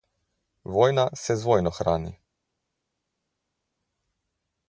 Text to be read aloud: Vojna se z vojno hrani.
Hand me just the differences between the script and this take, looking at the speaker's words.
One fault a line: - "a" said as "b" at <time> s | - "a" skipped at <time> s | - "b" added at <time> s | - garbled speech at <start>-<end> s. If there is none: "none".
none